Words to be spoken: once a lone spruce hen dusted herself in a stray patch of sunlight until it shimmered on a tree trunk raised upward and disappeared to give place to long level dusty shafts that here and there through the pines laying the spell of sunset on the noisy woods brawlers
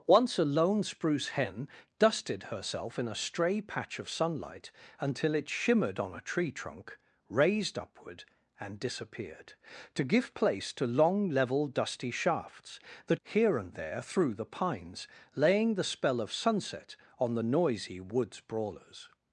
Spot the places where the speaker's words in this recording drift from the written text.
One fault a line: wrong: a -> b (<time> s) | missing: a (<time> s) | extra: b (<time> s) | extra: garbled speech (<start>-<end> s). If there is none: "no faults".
no faults